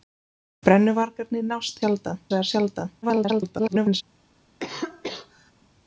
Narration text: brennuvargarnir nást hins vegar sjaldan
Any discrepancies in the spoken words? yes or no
yes